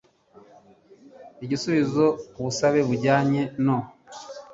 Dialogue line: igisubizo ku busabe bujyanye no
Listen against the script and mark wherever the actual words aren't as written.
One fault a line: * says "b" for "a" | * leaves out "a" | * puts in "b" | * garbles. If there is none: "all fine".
all fine